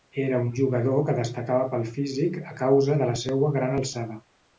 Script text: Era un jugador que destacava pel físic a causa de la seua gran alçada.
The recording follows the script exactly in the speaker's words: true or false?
true